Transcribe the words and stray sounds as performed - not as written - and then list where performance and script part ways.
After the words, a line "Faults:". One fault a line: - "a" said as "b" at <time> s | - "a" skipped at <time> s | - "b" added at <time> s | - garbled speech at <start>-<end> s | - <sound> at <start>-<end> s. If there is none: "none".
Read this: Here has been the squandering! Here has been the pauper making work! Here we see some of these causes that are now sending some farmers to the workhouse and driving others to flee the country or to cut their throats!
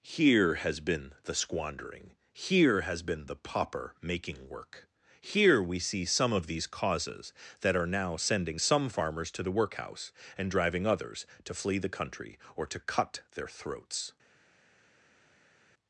Here has been the squandering! Here has been the pauper making work! Here we see some of these causes that are now sending some farmers to the workhouse and driving others to flee the country or to cut their throats!
Faults:
none